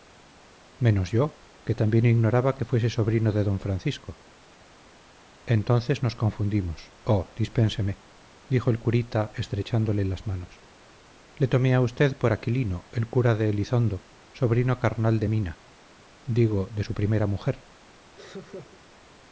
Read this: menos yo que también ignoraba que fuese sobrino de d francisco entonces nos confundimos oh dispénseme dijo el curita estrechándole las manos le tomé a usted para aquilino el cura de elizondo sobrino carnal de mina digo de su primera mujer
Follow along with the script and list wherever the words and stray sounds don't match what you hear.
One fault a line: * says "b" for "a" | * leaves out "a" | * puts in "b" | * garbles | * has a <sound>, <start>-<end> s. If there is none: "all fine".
* says "por" for "para"
* has a laugh, 18.2-18.8 s